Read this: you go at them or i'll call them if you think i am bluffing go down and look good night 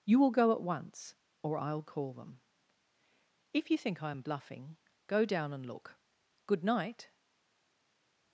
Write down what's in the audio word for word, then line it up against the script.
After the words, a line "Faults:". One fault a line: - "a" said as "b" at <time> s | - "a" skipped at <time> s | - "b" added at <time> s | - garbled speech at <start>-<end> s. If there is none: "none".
you will go at once or i'll call them if you think i am bluffing go down and look good night
Faults:
- "will" added at 0.2 s
- "them" said as "once" at 0.6 s